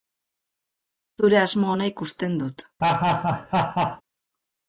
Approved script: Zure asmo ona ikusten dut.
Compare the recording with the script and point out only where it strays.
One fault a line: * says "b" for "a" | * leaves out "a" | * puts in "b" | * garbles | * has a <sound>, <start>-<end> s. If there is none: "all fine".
* has a laugh, 2.8-4.0 s